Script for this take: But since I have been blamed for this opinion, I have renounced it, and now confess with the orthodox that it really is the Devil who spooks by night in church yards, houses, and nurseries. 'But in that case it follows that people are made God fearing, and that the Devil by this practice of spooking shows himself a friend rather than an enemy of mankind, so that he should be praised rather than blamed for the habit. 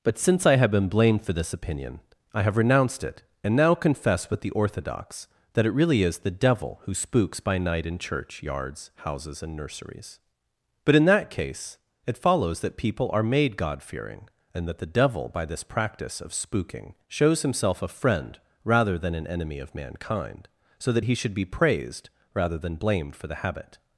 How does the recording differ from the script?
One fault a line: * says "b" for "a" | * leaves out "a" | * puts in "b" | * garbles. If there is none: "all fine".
all fine